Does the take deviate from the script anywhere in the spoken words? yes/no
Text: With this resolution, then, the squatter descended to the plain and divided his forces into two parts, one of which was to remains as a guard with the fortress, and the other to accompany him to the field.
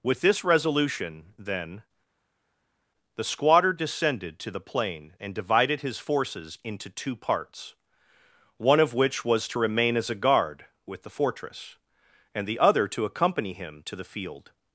yes